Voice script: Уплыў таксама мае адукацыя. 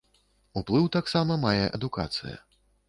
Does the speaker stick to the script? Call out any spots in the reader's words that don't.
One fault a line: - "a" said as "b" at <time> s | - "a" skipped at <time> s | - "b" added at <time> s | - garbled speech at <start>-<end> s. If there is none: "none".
none